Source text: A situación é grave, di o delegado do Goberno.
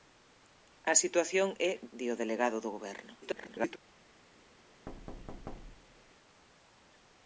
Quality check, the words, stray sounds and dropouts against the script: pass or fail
fail